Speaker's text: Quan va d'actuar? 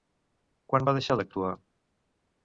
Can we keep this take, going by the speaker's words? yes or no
no